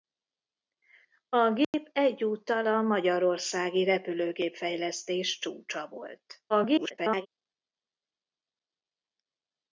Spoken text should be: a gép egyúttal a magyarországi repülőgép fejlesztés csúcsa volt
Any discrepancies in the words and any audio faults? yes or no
yes